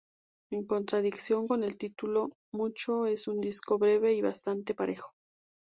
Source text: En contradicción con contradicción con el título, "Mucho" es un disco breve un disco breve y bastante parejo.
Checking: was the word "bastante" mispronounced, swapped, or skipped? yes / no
no